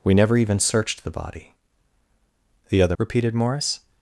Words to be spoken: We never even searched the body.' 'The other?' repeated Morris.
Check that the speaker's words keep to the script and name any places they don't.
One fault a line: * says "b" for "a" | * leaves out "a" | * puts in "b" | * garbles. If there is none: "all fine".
all fine